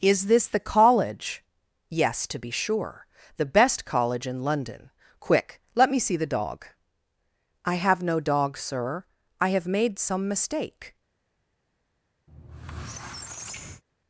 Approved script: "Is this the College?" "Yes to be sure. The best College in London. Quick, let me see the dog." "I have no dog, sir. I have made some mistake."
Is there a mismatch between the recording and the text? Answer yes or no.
no